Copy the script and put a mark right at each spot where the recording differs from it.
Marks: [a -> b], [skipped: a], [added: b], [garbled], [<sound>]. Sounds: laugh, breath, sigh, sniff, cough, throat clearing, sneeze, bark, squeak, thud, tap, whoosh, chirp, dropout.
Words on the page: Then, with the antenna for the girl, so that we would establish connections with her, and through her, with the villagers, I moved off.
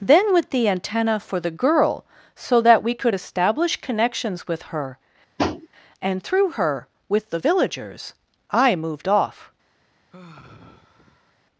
Then, with the antenna for the girl, so that we [would -> could] establish connections with her, [tap] and through her, with the villagers, I moved off. [sigh]